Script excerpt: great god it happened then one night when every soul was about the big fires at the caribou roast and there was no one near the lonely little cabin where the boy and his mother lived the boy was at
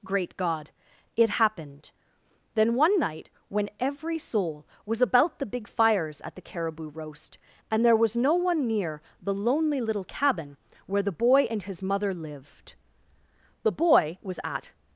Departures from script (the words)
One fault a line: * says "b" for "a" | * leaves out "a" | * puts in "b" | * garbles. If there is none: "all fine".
all fine